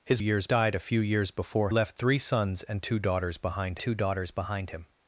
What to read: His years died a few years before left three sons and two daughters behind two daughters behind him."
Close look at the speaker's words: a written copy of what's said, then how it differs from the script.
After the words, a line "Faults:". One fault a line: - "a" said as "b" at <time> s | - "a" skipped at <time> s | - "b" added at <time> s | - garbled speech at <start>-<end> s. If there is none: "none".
His years died a few years before left three sons and two daughters behind two daughters behind him."
Faults:
none